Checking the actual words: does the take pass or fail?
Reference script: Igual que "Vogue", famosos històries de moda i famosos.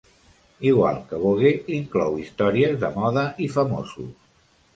fail